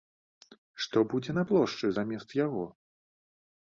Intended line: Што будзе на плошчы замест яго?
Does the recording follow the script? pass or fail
pass